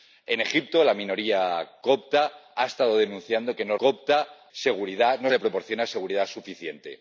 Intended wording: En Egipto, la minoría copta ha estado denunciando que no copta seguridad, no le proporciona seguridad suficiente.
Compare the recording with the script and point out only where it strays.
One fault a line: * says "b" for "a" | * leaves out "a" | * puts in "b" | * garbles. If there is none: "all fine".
all fine